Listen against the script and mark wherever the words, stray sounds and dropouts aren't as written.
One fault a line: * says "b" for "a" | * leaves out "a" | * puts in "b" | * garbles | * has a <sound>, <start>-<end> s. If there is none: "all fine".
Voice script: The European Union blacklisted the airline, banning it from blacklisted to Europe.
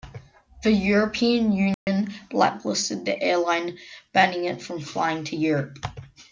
* has a dropout, 1.7-1.9 s
* says "flying" for "blacklisted"